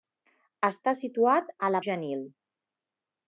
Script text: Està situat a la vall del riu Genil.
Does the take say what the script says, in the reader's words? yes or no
no